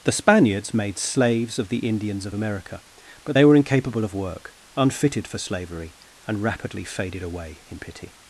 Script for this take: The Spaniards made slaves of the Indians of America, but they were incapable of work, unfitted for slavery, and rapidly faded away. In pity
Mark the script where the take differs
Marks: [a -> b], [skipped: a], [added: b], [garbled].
The Spaniards made slaves of the Indians of America, but they were incapable of work, unfitted for slavery, and rapidly faded away. In pity